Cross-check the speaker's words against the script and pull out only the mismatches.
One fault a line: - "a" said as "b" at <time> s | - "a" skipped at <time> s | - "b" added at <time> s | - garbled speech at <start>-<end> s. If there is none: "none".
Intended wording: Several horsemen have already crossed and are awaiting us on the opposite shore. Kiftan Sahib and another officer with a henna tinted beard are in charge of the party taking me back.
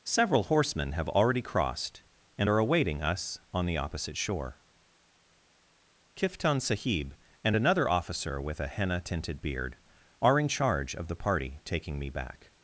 none